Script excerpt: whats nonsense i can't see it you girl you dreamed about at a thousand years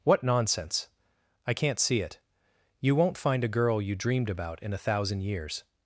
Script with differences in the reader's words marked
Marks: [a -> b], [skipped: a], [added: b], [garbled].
[whats -> what] nonsense i can't see it you [added: won't find a] girl you dreamed about [at -> in] a thousand years